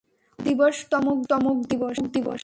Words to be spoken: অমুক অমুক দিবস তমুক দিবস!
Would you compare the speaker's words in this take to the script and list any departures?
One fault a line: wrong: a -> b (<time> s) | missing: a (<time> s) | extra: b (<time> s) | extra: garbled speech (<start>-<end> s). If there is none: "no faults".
no faults